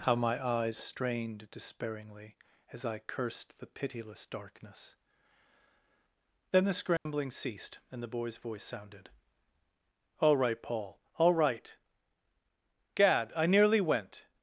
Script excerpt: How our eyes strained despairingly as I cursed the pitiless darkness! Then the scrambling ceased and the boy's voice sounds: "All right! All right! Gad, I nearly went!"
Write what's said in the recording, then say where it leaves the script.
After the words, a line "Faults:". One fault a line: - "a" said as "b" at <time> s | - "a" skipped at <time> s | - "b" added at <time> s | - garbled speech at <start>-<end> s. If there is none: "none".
How my eyes strained despairingly as I cursed the pitiless darkness! Then the scrambling ceased and the boy's voice sounded: "All right, Paul! All right! Gad, I nearly went!"
Faults:
- "our" said as "my" at 0.1 s
- "sounds" said as "sounded" at 8.6 s
- "Paul" added at 10.6 s